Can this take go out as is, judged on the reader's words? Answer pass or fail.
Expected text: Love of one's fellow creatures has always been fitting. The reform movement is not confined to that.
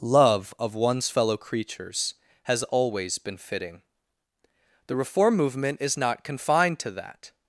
pass